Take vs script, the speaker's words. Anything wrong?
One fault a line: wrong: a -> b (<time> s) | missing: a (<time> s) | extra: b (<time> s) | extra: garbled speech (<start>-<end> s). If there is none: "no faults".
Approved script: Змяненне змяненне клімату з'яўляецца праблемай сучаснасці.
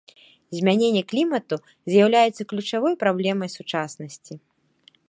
missing: змяненне (1.0 s)
extra: ключавой (2.5 s)